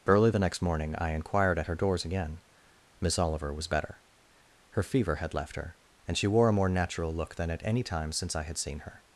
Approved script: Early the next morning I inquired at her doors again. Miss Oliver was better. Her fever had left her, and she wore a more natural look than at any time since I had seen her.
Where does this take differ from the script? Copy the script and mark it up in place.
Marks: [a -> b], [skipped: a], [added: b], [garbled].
Early the next morning I inquired at her doors again. Miss Oliver was better. Her fever had left her, and she wore a more natural look than at any time since I had seen her.